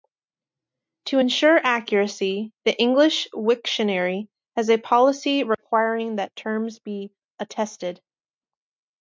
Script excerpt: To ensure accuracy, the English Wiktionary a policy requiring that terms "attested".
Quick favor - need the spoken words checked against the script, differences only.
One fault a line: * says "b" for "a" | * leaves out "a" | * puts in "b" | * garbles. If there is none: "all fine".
* puts in "has"
* puts in "be"